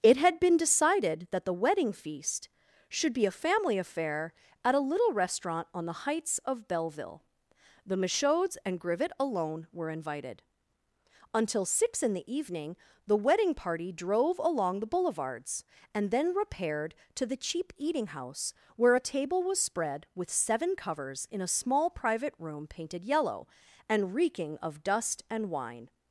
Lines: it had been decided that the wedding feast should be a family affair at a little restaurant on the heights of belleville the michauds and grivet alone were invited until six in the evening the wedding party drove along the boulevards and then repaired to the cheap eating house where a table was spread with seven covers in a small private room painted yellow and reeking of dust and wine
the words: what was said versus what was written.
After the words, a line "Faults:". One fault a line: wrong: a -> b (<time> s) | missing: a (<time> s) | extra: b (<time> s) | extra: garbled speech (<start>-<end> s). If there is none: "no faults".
it had been decided that the wedding feast should be a family affair at a little restaurant on the heights of belleville the michauds and grivet alone were invited until six in the evening the wedding party drove along the boulevards and then repaired to the cheap eating house where a table was spread with seven covers in a small private room painted yellow and reeking of dust and wine
Faults:
no faults